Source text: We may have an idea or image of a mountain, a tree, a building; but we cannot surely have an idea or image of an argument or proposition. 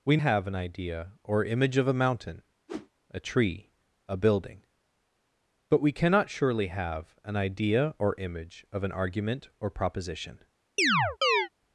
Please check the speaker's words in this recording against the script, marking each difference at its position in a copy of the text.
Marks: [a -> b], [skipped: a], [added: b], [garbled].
We [skipped: may] have an idea or image of a mountain, a tree, a building; but we cannot surely have an idea or image of an argument or proposition.